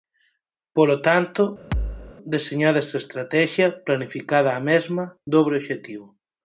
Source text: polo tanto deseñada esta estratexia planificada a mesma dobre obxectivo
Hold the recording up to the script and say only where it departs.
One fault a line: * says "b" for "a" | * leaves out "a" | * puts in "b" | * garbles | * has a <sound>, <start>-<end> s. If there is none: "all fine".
* has a thud, 1.7-2.1 s